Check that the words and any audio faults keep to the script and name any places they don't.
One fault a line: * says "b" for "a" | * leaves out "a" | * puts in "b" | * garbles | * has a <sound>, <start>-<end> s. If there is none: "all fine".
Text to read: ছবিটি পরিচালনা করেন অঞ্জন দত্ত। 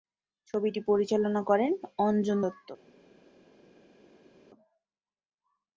all fine